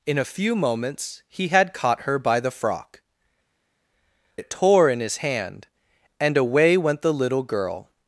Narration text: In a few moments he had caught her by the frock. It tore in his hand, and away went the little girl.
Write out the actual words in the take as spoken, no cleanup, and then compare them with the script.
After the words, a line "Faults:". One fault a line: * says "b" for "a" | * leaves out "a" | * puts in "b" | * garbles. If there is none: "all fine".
In a few moments he had caught her by the frock. It tore in his hand, and away went the little girl.
Faults:
all fine